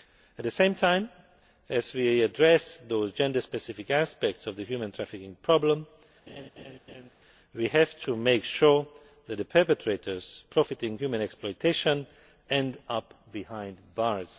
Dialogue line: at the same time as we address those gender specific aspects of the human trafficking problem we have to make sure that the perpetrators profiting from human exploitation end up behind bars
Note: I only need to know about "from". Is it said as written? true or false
false